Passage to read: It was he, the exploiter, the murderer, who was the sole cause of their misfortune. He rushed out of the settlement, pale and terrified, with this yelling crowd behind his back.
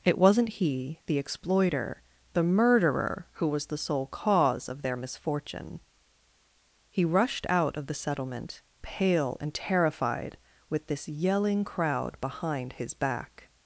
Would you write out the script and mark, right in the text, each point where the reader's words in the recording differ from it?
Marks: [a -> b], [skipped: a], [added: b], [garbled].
It [was -> wasn't] he, the exploiter, the murderer, who was the sole cause of their misfortune. He rushed out of the settlement, pale and terrified, with this yelling crowd behind his back.